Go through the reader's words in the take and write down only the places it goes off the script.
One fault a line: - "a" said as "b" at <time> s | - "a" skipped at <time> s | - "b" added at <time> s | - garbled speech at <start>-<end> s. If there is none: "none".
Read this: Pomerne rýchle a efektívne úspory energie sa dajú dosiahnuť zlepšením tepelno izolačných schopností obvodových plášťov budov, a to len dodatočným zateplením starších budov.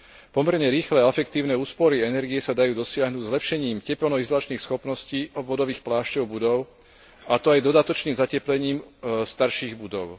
- "len" said as "aj" at 7.5 s